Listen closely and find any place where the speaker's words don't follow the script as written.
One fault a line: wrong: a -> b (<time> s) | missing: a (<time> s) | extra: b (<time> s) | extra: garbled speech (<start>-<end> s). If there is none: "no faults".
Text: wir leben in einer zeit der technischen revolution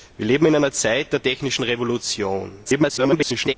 extra: garbled speech (2.6-3.5 s)